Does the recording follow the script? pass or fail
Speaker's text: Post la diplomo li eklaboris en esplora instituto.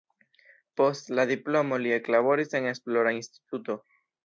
pass